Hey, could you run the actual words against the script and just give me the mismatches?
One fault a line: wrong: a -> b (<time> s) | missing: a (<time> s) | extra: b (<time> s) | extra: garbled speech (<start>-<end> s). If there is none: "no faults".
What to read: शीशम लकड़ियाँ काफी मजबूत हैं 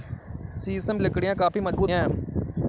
no faults